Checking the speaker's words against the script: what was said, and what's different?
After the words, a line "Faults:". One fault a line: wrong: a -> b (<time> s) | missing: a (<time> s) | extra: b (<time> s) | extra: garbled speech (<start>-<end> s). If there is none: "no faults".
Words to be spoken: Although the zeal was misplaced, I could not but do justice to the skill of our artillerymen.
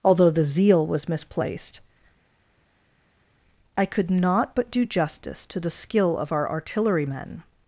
Although the zeal was misplaced, I could not but do justice to the skill of our artillerymen.
Faults:
no faults